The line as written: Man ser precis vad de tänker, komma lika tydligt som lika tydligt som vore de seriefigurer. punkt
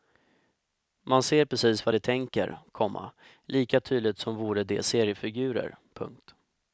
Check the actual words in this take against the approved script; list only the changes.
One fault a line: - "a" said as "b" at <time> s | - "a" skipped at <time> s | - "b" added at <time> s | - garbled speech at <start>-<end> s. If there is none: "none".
- "lika tydligt som" skipped at 4.4 s